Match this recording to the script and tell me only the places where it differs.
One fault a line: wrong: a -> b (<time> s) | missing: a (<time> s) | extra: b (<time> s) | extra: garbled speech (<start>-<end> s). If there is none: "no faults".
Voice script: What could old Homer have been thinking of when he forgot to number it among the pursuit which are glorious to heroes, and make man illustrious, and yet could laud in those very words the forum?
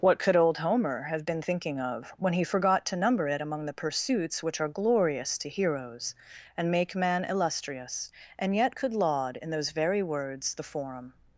wrong: pursuit -> pursuits (3.7 s)